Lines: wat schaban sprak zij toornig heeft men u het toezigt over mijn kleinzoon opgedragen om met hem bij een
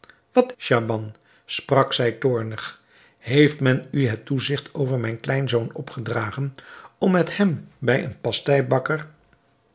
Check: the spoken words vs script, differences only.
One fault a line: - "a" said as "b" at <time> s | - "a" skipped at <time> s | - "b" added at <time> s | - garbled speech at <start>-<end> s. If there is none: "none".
none